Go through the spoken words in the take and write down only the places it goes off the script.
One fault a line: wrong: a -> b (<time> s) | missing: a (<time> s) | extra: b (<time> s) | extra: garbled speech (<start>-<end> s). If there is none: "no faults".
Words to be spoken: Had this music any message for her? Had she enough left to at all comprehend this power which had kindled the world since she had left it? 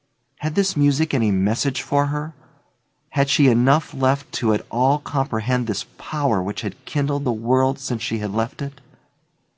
no faults